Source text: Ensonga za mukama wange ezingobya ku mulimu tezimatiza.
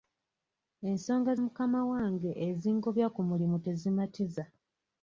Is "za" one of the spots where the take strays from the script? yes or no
yes